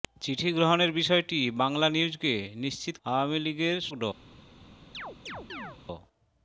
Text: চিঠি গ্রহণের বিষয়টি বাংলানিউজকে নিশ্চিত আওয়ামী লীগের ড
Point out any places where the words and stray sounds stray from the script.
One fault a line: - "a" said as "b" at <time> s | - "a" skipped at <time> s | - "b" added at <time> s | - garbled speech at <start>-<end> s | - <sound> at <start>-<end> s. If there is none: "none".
- chirp at 4.9-5.8 s